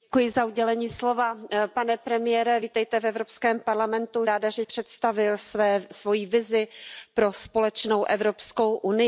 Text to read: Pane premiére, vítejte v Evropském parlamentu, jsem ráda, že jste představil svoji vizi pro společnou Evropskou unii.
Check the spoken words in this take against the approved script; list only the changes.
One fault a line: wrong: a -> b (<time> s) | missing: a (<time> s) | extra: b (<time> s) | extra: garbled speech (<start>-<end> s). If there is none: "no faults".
missing: jsem (4.3 s)
missing: jste (4.6 s)